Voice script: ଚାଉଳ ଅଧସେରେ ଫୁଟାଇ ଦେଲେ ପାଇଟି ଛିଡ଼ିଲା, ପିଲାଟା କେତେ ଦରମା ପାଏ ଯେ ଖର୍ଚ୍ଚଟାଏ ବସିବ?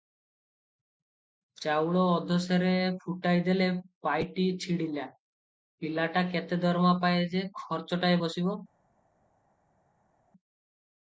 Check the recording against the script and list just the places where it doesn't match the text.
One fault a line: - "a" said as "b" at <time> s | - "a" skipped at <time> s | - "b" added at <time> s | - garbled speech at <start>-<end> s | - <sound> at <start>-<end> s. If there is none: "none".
none